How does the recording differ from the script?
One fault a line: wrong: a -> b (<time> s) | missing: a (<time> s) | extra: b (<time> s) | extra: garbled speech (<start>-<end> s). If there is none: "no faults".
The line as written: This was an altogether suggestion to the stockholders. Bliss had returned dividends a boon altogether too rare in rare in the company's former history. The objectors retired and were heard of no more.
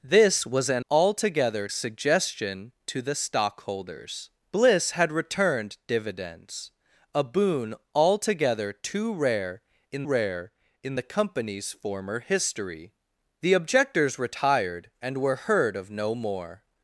no faults